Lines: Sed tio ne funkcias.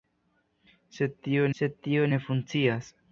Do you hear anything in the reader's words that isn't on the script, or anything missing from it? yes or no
yes